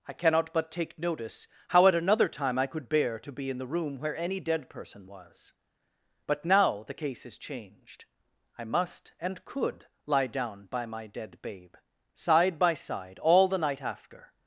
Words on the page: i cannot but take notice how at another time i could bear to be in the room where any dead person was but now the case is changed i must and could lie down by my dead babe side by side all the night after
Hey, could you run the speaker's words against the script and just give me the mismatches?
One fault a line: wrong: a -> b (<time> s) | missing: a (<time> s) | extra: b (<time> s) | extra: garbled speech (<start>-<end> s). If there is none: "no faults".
no faults